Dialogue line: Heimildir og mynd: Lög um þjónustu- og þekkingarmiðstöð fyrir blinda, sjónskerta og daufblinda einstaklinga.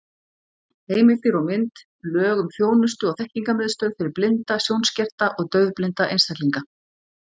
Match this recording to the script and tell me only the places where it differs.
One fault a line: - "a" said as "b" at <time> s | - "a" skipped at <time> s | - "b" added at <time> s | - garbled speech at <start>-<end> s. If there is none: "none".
none